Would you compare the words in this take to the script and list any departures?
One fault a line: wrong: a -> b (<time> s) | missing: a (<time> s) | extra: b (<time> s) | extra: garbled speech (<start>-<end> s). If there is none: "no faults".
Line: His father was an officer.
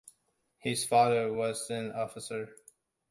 no faults